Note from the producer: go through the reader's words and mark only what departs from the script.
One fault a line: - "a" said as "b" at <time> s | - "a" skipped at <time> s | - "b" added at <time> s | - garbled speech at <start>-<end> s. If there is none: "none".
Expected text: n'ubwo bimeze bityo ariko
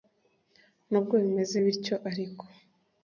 none